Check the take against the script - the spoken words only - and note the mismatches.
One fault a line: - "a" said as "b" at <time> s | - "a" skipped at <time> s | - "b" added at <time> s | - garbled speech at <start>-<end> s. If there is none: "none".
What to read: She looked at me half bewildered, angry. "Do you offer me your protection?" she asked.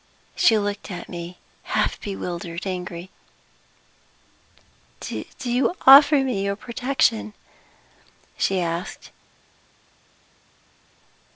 none